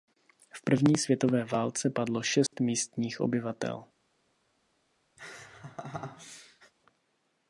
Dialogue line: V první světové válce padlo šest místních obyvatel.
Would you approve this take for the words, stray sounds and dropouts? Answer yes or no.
no